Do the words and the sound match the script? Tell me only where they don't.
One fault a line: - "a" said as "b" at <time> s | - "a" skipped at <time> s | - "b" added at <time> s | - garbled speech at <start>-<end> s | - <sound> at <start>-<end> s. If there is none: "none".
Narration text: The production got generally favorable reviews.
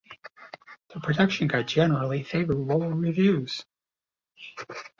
none